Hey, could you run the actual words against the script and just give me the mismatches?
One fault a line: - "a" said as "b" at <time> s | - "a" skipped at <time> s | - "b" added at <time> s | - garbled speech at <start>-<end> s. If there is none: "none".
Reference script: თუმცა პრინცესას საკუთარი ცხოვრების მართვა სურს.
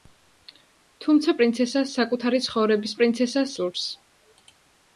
- "მართვა" said as "პრინცესას" at 3.0 s